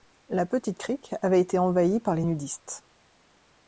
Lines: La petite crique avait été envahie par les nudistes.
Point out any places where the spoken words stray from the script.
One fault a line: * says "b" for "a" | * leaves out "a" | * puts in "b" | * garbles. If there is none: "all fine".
all fine